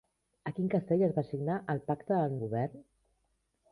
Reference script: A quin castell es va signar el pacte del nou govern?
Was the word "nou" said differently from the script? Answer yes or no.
yes